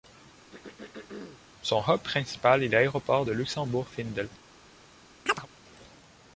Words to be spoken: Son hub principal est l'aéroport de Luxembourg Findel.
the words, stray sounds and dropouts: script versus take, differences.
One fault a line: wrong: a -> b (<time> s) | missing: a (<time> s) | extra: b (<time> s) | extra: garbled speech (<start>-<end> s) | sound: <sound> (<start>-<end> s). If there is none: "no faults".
sound: throat clearing (0.5-1.4 s)
sound: chirp (5.3-5.5 s)